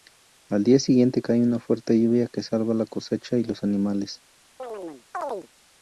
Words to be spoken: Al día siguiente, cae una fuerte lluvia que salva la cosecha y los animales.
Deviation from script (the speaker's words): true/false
false